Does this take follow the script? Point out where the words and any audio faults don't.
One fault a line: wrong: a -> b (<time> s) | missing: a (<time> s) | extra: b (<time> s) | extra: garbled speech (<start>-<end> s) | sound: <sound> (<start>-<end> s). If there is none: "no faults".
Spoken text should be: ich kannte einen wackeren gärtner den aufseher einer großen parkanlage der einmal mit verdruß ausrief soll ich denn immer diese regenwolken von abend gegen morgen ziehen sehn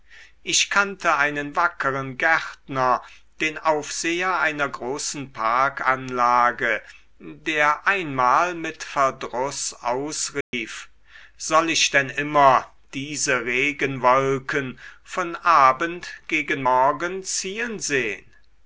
sound: dropout (10.4-10.5 s)